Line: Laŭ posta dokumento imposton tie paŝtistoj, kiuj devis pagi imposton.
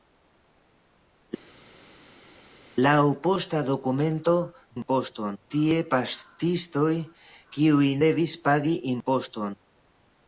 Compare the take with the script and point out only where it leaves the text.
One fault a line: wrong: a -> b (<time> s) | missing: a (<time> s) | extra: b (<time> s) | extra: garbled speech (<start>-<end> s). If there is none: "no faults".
no faults